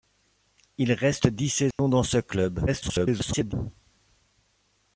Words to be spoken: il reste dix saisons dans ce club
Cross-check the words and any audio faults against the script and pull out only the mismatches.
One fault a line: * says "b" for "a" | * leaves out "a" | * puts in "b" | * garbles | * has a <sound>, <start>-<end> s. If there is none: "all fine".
* has a dropout, 1.7-1.8 s
* garbles